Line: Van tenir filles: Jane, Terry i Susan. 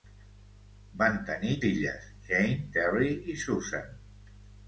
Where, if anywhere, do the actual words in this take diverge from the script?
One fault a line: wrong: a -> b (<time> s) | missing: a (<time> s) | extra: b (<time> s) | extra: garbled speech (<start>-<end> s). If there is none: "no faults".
no faults